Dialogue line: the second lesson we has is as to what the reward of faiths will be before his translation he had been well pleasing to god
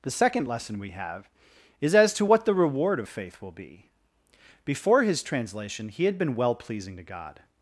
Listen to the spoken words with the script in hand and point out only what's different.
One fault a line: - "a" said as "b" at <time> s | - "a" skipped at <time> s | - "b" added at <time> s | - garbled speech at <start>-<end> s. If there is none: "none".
- "has" said as "have" at 0.9 s
- "faiths" said as "faith" at 3.1 s